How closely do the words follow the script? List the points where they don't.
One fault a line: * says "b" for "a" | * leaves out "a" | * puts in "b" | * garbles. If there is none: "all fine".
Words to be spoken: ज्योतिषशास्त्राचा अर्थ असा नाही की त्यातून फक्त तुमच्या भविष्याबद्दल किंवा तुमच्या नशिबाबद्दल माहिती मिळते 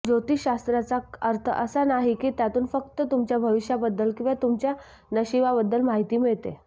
all fine